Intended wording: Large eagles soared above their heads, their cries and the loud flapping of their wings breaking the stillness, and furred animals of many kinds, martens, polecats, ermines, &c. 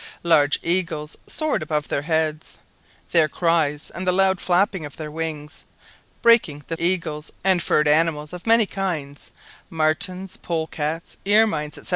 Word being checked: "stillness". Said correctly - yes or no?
no